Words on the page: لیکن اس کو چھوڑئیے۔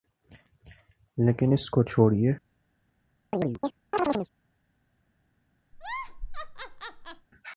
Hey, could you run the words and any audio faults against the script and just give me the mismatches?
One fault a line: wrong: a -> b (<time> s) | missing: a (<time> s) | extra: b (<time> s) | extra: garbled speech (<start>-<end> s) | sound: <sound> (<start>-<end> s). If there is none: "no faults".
sound: chirp (3.3-4.3 s)
sound: laugh (5.7-7.3 s)